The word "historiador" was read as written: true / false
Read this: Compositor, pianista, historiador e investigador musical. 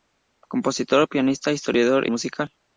true